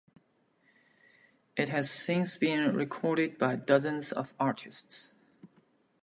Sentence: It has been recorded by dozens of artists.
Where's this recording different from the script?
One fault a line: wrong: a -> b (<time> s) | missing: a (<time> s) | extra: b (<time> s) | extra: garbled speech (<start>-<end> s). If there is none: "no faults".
extra: since (1.9 s)